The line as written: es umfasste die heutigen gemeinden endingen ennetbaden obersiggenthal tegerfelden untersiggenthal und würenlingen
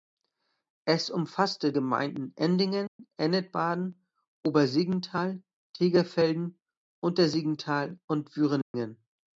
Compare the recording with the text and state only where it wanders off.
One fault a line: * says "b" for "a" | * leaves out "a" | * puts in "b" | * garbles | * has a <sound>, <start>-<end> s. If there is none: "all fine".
* leaves out "die heutigen"
* has a dropout, 2.9-3.0 s
* has a dropout, 8.6-8.7 s